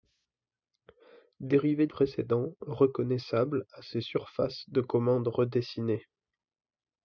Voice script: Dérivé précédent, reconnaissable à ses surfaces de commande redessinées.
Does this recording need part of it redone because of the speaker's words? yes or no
no